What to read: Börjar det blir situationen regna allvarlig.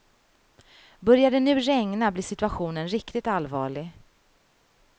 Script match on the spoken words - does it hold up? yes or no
no